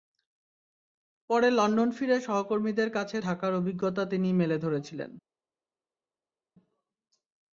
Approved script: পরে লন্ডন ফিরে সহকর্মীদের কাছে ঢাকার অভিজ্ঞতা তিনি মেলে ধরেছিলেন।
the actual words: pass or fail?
pass